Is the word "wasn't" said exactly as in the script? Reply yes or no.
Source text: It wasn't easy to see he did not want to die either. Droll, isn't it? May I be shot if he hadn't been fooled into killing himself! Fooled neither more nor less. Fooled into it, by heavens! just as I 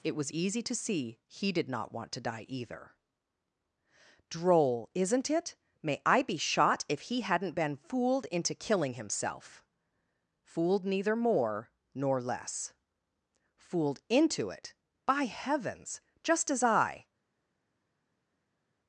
no